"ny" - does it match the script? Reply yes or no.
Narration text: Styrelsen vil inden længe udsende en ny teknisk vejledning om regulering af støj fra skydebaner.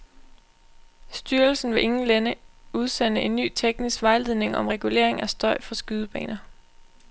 yes